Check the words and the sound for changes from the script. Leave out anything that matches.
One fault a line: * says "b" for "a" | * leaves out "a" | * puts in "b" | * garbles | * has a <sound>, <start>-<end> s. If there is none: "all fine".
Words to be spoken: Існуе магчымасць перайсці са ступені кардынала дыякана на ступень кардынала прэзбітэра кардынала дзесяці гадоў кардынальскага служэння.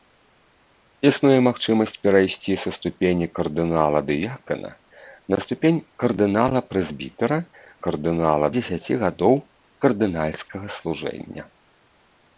all fine